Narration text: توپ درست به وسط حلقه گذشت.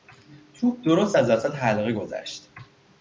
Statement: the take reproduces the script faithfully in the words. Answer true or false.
false